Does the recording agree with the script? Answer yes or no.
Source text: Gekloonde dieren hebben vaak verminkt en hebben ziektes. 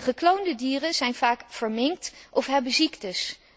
no